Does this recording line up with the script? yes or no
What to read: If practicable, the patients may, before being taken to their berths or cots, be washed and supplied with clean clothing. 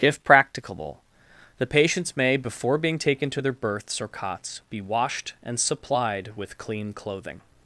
yes